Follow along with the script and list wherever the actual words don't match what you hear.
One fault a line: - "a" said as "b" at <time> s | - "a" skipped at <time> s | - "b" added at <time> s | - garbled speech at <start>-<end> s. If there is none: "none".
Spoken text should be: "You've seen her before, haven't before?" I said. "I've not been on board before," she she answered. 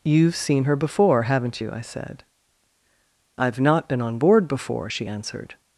- "before" said as "you" at 1.6 s
- "she" skipped at 5.1 s